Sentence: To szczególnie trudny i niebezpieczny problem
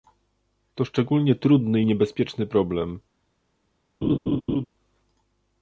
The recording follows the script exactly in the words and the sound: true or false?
false